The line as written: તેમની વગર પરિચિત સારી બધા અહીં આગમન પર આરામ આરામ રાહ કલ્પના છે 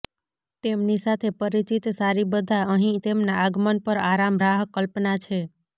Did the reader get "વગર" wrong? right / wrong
wrong